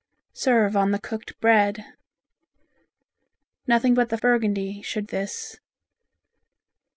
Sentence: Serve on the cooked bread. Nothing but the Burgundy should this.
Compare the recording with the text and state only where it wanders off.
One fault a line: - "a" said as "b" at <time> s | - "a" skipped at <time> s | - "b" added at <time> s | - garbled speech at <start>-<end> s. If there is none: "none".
none